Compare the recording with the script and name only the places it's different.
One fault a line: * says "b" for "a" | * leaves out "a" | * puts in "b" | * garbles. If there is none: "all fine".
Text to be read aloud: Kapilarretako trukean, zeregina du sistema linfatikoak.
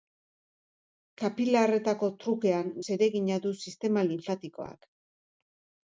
all fine